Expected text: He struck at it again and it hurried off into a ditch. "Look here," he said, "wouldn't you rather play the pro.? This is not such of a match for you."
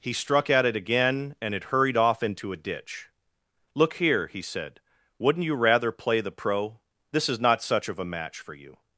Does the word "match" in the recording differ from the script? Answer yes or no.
no